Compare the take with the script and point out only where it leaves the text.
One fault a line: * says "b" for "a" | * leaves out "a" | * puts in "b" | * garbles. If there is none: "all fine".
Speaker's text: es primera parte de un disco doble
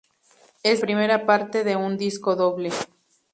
all fine